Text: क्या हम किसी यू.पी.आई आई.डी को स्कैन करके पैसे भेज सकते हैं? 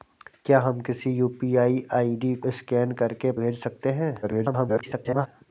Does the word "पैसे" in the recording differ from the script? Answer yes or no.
yes